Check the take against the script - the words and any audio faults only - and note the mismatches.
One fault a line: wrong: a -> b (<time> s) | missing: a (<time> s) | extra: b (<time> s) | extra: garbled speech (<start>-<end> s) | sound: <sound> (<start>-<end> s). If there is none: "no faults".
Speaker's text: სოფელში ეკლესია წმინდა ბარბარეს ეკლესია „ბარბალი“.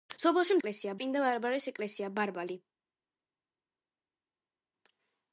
no faults